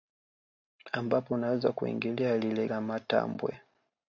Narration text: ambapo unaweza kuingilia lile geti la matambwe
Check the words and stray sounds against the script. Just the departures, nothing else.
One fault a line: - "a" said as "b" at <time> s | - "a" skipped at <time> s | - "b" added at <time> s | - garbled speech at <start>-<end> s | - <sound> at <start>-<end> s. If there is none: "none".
- "geti" skipped at 2.7 s